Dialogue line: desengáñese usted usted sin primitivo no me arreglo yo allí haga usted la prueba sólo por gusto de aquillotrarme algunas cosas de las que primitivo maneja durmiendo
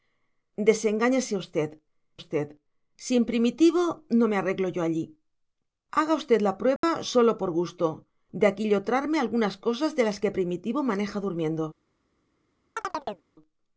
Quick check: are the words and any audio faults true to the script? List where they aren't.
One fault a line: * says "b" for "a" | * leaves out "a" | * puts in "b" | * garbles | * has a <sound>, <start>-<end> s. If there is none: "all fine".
* has a dropout, 6.8-6.8 s
* has a chirp, 12.8-13.3 s